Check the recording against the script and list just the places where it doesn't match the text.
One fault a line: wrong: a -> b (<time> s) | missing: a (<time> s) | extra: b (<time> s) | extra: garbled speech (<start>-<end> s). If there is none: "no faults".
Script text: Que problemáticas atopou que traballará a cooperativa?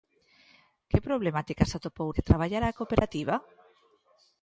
no faults